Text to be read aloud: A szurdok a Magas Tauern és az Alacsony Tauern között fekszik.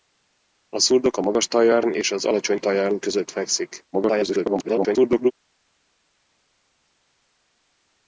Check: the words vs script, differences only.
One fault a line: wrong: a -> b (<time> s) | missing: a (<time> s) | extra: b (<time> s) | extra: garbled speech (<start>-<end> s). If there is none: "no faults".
extra: garbled speech (3.9-5.3 s)